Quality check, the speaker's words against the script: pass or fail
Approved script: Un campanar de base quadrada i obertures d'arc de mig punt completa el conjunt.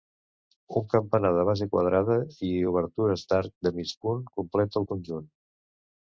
pass